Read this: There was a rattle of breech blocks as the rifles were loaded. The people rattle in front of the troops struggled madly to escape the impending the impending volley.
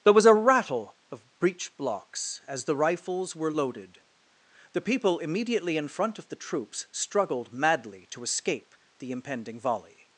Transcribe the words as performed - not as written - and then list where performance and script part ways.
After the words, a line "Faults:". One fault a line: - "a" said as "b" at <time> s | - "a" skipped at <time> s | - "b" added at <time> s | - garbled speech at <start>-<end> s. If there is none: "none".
There was a rattle of breech blocks as the rifles were loaded. The people immediately in front of the troops struggled madly to escape the impending volley.
Faults:
- "rattle" said as "immediately" at 5.2 s
- "the impending" skipped at 9.6 s